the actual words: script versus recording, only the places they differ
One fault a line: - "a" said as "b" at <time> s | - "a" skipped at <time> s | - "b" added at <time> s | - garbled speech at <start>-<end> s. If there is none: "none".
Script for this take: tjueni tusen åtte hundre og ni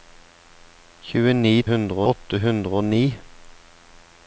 - "tusen" said as "hundre" at 1.7 s